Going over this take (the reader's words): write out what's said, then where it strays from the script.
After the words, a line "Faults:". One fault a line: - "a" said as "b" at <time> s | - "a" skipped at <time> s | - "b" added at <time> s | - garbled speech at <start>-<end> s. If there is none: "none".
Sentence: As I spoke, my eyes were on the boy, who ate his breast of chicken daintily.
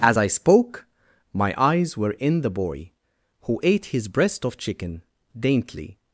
As I spoke, my eyes were in the boy, who ate his breast of chicken daintily.
Faults:
- "on" said as "in" at 2.1 s